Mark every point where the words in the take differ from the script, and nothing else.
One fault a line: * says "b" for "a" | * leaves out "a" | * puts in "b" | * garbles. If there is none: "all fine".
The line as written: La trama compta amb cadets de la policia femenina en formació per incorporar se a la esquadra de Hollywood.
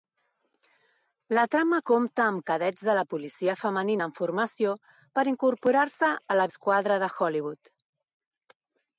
all fine